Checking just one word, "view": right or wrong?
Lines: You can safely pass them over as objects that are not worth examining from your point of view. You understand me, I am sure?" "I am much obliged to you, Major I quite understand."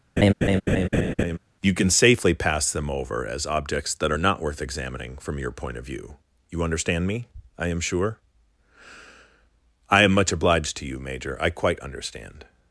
right